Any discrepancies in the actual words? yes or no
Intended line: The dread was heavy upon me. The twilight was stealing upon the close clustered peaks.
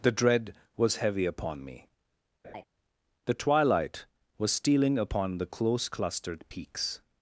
no